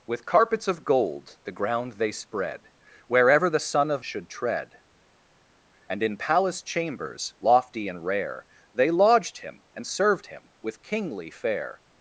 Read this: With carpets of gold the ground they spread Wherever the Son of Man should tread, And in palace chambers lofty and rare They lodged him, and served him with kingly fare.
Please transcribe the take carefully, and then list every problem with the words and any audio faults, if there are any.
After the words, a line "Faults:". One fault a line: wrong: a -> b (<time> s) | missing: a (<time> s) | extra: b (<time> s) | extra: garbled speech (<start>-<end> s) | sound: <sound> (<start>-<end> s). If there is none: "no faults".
With carpets of gold the ground they spread Wherever the Son of Should tread, And in palace chambers lofty and rare They lodged him, and served him with kingly fare.
Faults:
missing: Man (4.0 s)